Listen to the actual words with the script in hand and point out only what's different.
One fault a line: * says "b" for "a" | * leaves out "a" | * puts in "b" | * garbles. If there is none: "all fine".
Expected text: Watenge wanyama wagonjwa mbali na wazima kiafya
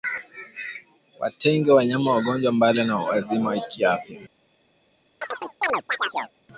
all fine